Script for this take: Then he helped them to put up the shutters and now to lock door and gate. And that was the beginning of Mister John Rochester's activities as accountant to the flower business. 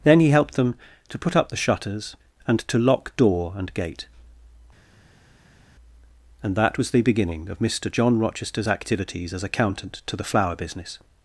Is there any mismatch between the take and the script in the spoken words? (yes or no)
yes